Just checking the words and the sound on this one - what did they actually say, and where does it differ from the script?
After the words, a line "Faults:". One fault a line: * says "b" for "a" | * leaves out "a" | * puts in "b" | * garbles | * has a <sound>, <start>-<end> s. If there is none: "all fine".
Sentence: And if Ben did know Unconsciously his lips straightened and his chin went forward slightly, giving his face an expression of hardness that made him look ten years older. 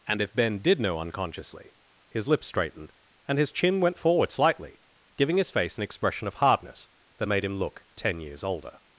And if Ben did know Unconsciously his lips straightened and his chin went forward slightly, giving his face an expression of hardness that made him look ten years older.
Faults:
all fine